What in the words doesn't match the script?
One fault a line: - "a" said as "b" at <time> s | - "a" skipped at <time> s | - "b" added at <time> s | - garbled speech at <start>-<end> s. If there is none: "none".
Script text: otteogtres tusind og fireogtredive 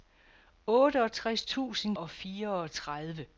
none